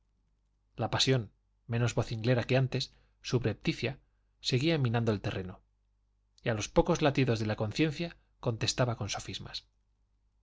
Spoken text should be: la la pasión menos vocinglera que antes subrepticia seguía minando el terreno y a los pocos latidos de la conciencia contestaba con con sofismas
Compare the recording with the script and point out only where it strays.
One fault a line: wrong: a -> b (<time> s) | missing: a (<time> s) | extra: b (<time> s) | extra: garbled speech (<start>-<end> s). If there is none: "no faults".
missing: la (0.9 s)
missing: con (9.1 s)